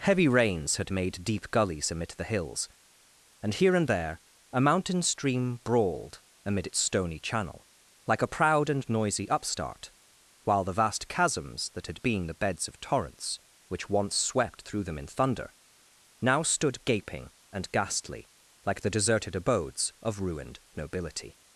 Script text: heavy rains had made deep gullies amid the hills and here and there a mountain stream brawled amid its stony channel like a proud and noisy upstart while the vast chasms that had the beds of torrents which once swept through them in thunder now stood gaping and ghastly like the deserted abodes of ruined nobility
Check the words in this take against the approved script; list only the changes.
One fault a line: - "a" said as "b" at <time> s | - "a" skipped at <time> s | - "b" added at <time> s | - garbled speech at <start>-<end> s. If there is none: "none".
- "been" added at 12.0 s